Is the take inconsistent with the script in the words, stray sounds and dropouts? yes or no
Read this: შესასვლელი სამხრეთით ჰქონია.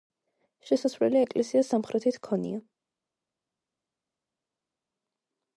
yes